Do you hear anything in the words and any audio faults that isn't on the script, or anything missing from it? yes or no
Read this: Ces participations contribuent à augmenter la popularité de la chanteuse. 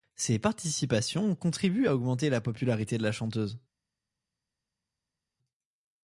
no